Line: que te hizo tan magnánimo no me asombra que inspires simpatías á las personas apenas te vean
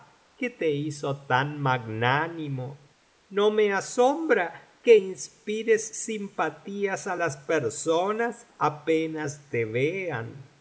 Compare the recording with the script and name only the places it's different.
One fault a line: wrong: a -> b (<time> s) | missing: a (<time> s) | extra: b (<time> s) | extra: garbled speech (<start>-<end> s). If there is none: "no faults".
no faults